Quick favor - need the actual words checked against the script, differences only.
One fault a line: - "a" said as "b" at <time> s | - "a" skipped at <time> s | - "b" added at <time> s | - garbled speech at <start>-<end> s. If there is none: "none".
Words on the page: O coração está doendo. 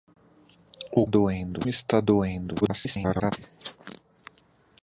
- "coração" said as "doendo" at 1.0 s
- garbled speech at 2.6-3.3 s